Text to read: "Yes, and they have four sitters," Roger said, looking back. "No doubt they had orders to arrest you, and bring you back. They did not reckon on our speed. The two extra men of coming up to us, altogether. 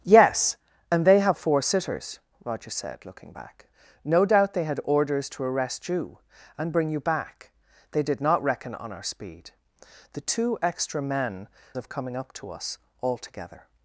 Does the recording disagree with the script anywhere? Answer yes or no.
no